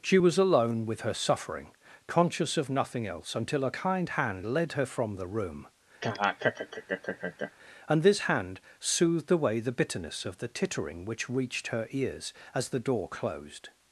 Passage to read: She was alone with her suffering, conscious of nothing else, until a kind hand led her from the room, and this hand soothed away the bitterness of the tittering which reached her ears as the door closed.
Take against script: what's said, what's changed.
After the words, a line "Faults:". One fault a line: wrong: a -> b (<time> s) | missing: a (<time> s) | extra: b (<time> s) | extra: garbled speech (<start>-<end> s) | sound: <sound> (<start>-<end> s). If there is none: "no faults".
She was alone with her suffering, conscious of nothing else, until a kind hand led her from the room, and this hand soothed away the bitterness of the tittering which reached her ears as the door closed.
Faults:
sound: laugh (6.0-7.5 s)